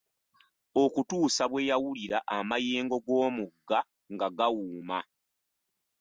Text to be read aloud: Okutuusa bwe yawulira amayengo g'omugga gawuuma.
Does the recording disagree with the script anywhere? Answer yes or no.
yes